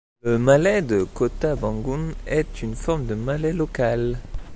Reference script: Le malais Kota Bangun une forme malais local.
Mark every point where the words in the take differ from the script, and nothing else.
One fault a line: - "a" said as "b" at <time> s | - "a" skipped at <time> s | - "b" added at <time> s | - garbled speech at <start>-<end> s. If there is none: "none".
- "de" added at 0.8 s
- "est" added at 2.3 s
- "de" added at 3.0 s